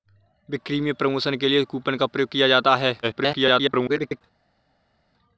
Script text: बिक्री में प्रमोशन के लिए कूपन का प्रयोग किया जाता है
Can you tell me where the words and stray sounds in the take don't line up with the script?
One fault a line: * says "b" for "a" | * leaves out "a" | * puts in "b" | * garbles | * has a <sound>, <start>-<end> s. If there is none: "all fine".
* garbles